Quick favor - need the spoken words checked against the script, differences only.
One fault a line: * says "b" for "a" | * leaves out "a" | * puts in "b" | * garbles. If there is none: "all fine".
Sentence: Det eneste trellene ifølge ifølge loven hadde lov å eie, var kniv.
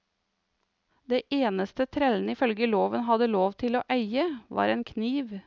* leaves out "ifølge"
* puts in "til"
* puts in "en"